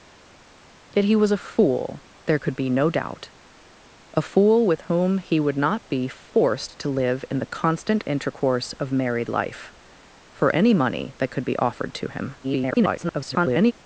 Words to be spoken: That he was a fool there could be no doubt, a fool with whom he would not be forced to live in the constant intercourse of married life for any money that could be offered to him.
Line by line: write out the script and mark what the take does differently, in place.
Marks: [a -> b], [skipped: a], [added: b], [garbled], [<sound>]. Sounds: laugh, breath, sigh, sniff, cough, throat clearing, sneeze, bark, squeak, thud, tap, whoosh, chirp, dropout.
That he was a fool there could be no doubt, a fool with whom he would not be forced to live in the constant intercourse of married life for any money that could be offered to him. [garbled]